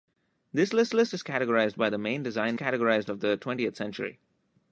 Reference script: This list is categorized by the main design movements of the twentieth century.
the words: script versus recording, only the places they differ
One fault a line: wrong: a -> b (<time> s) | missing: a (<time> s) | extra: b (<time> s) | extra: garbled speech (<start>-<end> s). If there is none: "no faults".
extra: list (0.9 s)
wrong: movements -> categorized (2.5 s)